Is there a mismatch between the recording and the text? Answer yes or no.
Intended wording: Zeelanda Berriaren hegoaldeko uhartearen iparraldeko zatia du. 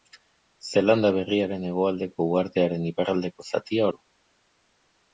no